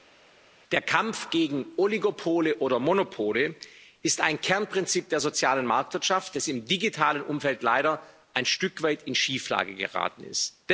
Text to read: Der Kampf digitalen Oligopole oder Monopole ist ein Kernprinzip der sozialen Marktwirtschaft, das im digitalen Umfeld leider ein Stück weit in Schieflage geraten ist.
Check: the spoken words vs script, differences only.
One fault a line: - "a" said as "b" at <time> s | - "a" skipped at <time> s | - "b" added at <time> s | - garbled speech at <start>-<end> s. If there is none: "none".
- "digitalen" said as "gegen" at 1.3 s